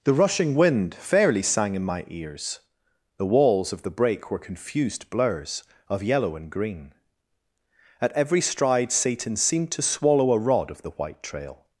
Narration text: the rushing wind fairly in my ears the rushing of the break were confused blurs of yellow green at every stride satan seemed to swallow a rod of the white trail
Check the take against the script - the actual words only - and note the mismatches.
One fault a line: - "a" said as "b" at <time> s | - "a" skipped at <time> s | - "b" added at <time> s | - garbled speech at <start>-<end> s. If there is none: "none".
- "sang" added at 1.4 s
- "rushing" said as "walls" at 3.2 s
- "and" added at 6.3 s